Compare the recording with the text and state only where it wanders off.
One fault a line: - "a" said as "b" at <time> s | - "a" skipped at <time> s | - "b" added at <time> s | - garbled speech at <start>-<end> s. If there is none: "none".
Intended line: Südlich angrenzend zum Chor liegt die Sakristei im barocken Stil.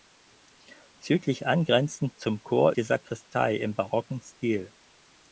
- "liegt" skipped at 2.7 s